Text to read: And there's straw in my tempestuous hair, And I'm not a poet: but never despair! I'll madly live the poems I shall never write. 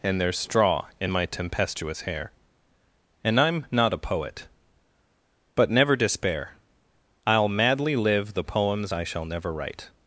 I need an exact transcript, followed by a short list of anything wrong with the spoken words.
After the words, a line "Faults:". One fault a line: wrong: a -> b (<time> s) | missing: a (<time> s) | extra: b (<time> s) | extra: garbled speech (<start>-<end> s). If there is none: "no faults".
And there's straw in my tempestuous hair, And I'm not a poet: but never despair! I'll madly live the poems I shall never write.
Faults:
no faults